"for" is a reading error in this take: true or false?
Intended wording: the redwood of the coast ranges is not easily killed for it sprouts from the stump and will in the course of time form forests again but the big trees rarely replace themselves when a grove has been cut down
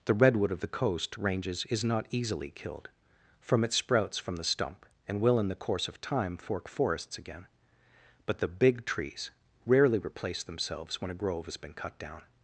true